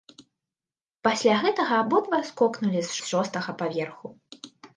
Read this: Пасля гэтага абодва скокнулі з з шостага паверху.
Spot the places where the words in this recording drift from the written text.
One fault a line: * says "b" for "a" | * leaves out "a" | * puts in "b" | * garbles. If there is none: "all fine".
all fine